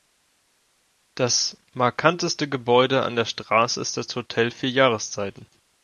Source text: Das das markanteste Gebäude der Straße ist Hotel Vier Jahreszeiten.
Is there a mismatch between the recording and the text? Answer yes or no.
yes